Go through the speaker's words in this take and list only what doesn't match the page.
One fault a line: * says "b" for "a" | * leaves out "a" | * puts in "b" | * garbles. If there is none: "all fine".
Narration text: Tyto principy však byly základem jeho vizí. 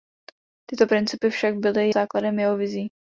all fine